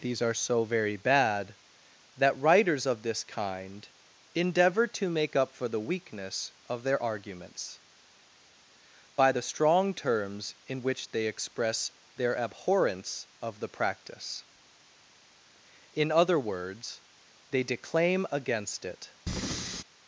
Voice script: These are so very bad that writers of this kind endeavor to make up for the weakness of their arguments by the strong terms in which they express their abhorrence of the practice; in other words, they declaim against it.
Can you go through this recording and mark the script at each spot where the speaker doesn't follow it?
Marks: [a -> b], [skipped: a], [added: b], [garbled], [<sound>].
These are so very bad that writers of this kind endeavor to make up for the weakness of their arguments by the strong terms in which they express their abhorrence of the practice; in other words, they declaim against it. [breath]